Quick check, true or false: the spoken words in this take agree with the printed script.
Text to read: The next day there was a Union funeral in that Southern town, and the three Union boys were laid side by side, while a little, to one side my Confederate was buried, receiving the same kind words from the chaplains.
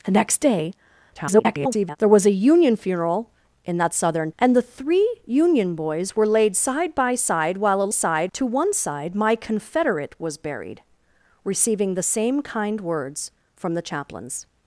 false